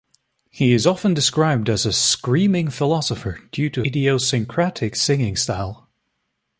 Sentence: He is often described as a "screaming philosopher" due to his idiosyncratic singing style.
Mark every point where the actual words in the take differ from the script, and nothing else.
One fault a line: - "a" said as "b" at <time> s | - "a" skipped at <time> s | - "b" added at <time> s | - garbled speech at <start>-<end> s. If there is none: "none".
- "his" skipped at 3.8 s